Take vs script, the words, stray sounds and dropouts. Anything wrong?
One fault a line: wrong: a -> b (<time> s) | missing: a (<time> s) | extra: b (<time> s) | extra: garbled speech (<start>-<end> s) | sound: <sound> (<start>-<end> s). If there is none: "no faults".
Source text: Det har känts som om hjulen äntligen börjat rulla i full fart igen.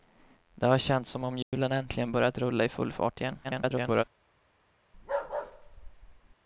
sound: dropout (1.4-1.5 s)
extra: garbled speech (3.4-4.0 s)
sound: bark (4.9-6.4 s)